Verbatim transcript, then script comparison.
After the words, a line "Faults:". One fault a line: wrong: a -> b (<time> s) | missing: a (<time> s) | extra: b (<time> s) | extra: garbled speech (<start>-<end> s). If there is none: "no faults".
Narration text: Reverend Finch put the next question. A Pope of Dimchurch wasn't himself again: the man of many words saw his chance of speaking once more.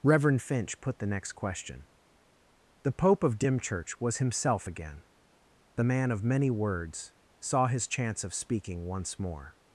Reverend Finch put the next question. The Pope of Dimchurch was himself again: the man of many words saw his chance of speaking once more.
Faults:
wrong: A -> The (2.8 s)
wrong: wasn't -> was (4.0 s)